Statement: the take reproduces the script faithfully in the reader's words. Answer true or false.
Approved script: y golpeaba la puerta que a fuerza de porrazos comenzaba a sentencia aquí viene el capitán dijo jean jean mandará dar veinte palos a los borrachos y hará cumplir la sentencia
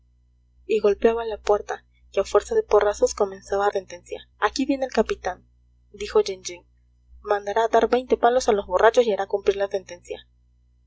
true